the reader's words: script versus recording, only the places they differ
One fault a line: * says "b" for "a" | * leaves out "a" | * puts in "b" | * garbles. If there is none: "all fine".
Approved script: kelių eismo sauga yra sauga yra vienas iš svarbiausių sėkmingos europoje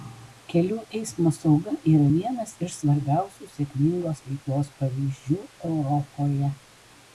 * leaves out "sauga yra"
* puts in "veiklos pavyzdžių"